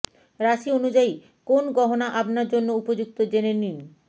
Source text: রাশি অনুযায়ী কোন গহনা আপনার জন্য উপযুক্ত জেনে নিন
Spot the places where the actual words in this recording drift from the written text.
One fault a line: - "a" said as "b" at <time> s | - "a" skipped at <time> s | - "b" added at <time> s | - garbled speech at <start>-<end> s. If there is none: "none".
none